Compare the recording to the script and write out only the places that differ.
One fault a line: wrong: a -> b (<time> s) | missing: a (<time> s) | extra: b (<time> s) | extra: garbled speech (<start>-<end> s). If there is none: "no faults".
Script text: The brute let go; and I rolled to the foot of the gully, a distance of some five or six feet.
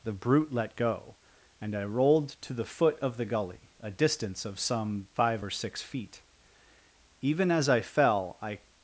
extra: Even as I fell I (7.2 s)